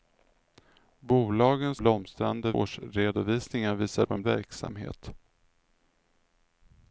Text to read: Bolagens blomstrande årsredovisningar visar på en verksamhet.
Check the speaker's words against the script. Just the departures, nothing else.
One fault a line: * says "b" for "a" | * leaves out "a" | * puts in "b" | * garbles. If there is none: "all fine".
all fine